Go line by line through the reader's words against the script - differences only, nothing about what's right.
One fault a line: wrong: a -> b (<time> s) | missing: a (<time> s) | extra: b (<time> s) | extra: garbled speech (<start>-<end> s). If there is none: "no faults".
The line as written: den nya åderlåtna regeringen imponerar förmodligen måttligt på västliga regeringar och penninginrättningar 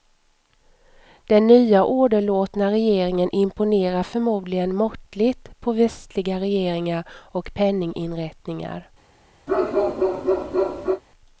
no faults